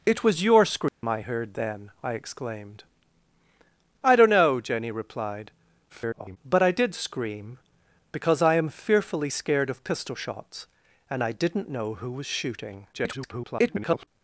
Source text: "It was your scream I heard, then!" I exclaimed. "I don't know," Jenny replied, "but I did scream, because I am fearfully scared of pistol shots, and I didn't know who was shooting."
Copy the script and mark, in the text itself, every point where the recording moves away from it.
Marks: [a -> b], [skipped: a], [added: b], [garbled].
"It was your scream I heard, then!" I exclaimed. "I don't know," Jenny replied, [garbled] "but I did scream, because I am fearfully scared of pistol shots, and I didn't know who was shooting." [garbled]